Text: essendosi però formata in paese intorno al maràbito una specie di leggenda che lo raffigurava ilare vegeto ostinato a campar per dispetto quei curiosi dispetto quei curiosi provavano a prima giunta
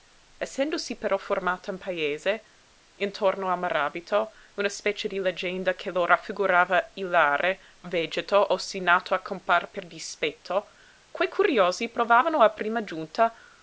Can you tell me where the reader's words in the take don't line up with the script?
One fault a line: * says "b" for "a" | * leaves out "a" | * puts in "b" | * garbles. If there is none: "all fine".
* leaves out "dispetto quei curiosi"